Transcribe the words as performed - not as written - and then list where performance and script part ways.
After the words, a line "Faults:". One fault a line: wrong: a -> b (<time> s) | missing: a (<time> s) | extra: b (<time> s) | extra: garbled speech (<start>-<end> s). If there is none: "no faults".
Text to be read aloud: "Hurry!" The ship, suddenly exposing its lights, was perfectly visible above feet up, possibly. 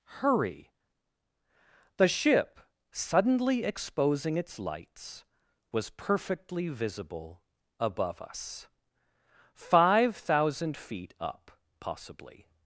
"Hurry!" The ship, suddenly exposing its lights, was perfectly visible above us. Five thousand feet up, possibly.
Faults:
extra: us Five thousand (8.2 s)